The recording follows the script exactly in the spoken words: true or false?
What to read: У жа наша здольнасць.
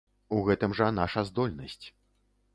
false